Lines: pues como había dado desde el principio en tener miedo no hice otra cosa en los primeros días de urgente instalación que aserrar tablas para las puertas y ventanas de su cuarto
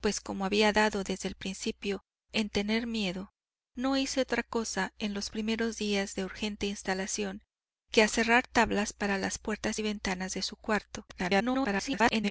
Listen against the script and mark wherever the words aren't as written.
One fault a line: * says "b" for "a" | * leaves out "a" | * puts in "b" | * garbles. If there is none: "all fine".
* garbles